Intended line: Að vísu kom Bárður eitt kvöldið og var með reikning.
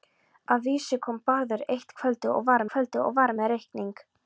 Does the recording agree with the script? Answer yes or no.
no